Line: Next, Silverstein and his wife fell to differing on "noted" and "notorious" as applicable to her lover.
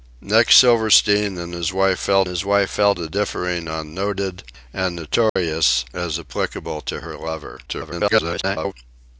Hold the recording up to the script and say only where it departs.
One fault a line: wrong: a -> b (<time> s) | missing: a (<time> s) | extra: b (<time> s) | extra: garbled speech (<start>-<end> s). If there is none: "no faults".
extra: his wife fell (2.3 s)
extra: garbled speech (7.7-8.7 s)